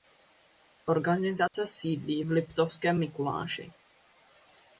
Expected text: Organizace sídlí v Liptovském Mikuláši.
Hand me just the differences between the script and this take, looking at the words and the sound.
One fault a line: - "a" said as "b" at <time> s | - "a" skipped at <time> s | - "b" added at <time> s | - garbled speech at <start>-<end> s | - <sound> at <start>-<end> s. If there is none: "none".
- dropout at 1.5-1.5 s